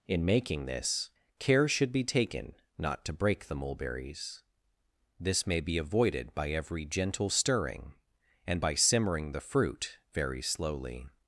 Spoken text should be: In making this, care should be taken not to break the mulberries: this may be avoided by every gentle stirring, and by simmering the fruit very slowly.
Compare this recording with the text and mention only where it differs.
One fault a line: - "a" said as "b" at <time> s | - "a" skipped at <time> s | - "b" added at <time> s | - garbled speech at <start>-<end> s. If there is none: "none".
none